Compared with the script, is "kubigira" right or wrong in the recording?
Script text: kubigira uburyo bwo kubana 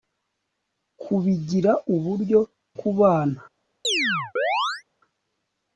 right